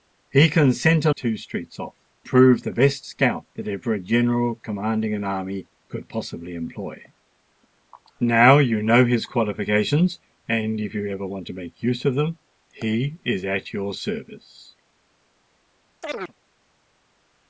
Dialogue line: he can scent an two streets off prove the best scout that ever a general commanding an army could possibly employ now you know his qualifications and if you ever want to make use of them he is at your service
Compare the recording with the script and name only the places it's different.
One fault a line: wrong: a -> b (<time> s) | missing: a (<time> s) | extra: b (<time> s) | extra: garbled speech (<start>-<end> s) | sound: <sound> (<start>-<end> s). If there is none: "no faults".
sound: chirp (16.0-16.3 s)